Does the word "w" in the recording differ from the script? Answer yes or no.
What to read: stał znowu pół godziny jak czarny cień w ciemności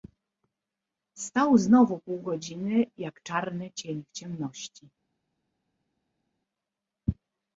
no